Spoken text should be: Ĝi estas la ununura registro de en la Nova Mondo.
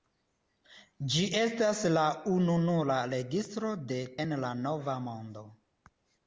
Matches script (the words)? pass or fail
pass